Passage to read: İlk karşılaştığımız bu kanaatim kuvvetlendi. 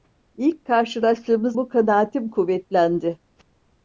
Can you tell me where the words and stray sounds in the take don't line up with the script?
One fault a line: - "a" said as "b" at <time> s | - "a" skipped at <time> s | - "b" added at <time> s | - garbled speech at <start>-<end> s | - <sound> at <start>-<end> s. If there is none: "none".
none